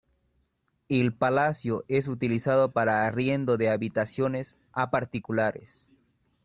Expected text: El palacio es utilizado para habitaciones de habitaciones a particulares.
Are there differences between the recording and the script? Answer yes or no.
yes